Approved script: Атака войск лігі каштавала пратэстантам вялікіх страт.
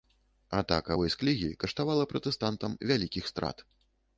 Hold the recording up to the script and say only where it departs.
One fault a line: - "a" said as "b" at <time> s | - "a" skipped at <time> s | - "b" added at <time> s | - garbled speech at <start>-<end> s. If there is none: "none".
none